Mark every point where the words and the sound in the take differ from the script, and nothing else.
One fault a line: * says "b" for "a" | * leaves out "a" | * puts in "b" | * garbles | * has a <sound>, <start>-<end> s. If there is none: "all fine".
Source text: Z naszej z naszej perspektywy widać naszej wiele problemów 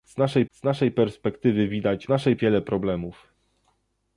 all fine